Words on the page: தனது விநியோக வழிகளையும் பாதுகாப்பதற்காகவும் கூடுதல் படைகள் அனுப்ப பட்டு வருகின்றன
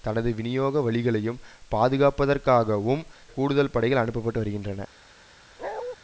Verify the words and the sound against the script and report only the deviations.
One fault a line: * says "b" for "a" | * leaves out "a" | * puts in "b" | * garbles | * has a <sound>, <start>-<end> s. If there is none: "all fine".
* has a bark, 5.6-6.0 s